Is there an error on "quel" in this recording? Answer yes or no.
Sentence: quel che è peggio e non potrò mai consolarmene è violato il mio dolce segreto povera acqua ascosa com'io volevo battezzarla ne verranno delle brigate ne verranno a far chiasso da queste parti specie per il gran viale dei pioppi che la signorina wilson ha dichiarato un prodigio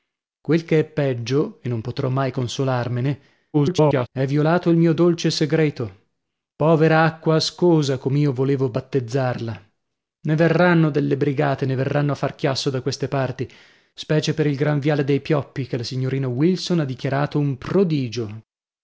no